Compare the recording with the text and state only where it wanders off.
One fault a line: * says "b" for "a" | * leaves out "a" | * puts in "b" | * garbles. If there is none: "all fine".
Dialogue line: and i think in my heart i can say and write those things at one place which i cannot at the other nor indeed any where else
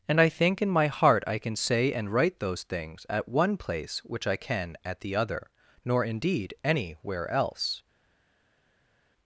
* says "can" for "cannot"